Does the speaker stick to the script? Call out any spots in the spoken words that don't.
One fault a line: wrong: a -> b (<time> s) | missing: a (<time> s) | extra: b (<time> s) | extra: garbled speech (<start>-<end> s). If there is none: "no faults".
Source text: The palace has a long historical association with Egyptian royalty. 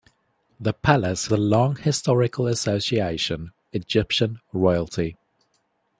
missing: has (1.3 s)
missing: with (3.5 s)